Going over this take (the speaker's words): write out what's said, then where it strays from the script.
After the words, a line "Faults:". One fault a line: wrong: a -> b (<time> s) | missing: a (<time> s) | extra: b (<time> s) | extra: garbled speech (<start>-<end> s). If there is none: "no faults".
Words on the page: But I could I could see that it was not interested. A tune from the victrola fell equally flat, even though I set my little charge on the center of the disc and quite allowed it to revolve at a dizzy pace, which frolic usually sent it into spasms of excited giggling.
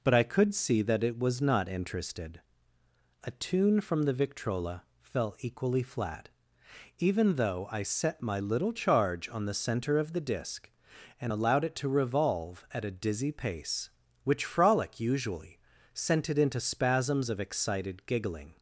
But I could see that it was not interested. A tune from the victrola fell equally flat, even though I set my little charge on the center of the disc and allowed it to revolve at a dizzy pace, which frolic usually sent it into spasms of excited giggling.
Faults:
missing: I could (0.6 s)
missing: quite (11.3 s)